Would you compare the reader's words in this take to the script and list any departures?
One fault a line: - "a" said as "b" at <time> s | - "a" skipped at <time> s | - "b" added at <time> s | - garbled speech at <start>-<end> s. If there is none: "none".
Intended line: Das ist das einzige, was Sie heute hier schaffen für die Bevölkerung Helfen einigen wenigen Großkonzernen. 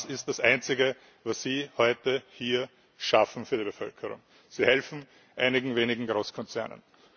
- "Sie" added at 4.5 s